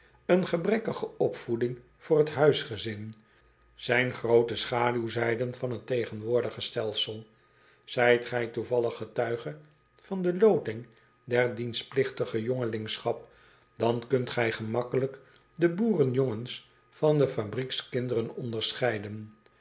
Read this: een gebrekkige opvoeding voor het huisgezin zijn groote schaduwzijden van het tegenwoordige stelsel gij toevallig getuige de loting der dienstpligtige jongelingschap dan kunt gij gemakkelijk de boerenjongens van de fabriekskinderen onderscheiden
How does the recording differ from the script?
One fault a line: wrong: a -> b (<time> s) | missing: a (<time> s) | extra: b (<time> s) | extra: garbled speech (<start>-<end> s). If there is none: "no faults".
extra: ijt (8.0 s)
extra: van (10.0 s)